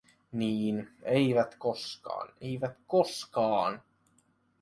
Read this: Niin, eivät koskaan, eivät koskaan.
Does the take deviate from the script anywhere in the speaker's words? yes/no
no